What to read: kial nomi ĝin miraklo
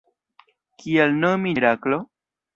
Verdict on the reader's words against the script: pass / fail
fail